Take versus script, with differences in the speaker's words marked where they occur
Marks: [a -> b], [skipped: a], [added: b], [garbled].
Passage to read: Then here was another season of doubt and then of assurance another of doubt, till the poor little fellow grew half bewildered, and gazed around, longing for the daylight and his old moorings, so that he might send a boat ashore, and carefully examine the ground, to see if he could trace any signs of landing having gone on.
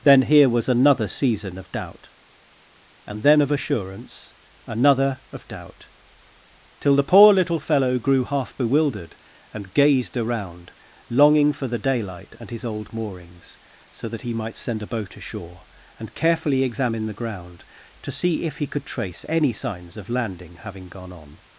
Then here was another season of doubt and then of assurance another of doubt, till the poor little fellow grew half bewildered, and gazed around, longing for the daylight and his old moorings, so that he might send a boat ashore, and carefully examine the ground, to see if he could trace any signs of landing having gone on.